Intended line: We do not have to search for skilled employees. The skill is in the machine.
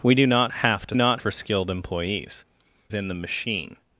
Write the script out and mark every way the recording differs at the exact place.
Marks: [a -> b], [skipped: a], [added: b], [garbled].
We do not have to [search -> not] for skilled employees. [skipped: The skill is] in the machine.